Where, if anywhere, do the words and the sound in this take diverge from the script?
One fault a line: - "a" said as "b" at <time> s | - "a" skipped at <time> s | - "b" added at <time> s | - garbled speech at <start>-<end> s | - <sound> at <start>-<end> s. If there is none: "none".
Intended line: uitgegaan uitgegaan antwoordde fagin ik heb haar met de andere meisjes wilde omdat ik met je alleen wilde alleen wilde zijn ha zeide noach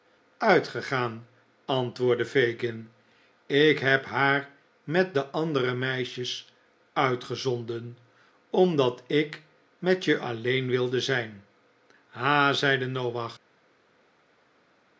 - "uitgegaan" skipped at 1.3 s
- "wilde" said as "uitgezonden" at 6.9 s
- "alleen wilde" skipped at 11.0 s